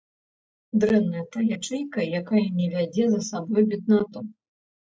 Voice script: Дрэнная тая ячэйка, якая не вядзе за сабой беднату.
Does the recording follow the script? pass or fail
pass